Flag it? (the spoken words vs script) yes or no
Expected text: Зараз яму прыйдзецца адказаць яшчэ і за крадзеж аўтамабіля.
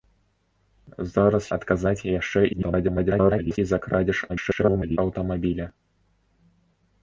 yes